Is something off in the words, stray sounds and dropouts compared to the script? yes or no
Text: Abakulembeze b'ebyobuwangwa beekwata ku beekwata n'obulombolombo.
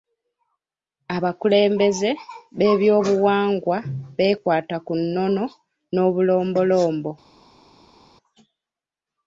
yes